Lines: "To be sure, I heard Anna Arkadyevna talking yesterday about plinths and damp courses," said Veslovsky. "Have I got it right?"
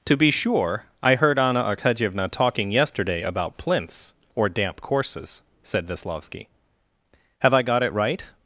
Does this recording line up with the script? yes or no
no